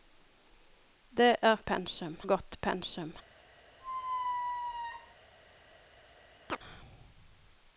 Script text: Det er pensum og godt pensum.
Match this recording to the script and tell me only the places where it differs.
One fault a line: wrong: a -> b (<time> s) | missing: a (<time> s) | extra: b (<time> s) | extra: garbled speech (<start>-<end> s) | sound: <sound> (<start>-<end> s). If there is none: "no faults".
sound: squeak (3.8-5.2 s)
sound: chirp (6.5-6.6 s)